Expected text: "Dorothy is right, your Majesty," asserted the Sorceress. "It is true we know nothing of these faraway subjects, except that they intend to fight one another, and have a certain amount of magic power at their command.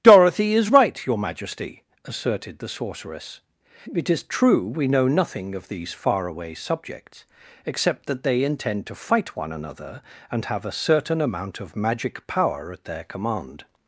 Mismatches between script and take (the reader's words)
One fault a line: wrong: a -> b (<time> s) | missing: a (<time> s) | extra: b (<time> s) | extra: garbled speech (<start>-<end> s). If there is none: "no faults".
no faults